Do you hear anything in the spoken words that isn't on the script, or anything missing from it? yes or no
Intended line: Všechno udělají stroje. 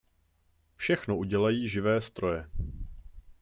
yes